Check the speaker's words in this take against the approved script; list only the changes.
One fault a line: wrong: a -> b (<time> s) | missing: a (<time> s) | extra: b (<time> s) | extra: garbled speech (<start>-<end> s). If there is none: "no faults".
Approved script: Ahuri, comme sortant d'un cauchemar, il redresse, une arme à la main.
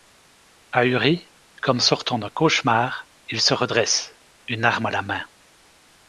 extra: se (3.4 s)